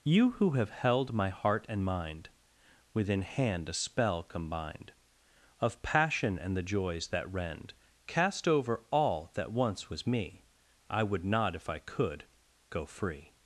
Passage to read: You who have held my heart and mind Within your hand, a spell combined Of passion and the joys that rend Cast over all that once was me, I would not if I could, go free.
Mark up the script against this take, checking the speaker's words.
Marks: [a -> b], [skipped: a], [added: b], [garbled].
You who have held my heart and mind Within [skipped: your] hand, a spell combined Of passion and the joys that rend Cast over all that once was me, I would not if I could, go free.